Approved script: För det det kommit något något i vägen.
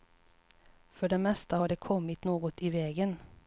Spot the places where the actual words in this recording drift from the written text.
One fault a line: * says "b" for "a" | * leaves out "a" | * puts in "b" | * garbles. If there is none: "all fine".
* puts in "mesta har"
* leaves out "något"